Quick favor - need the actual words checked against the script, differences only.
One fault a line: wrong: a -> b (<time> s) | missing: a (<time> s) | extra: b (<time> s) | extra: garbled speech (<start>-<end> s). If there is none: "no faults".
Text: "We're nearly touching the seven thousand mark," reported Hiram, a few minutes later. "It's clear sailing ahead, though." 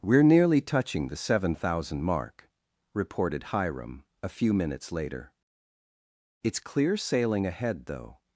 no faults